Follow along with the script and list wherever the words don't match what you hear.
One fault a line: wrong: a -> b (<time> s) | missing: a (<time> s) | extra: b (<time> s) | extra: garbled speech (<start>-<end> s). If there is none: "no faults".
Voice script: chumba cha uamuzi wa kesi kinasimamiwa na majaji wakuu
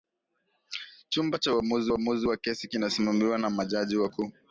extra: uamuzi (1.9 s)